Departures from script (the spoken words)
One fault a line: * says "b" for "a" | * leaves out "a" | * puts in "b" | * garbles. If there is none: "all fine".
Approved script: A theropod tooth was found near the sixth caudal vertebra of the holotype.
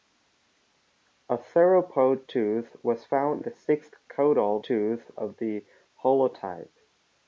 * leaves out "near"
* says "tooth" for "vertebra"